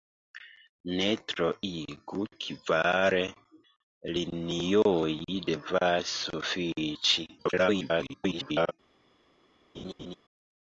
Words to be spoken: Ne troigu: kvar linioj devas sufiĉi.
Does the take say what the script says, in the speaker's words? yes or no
no